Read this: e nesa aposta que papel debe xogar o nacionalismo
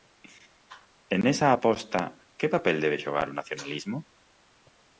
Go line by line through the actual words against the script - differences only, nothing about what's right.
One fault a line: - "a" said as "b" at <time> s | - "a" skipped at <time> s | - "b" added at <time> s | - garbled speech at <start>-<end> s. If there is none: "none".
none